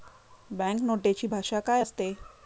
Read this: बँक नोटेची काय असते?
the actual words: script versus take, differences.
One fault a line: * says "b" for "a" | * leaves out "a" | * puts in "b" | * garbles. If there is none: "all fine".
* puts in "भाषा"